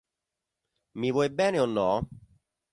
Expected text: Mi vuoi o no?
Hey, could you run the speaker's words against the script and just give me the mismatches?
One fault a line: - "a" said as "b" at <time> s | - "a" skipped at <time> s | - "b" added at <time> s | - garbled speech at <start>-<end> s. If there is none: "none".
- "bene" added at 1.4 s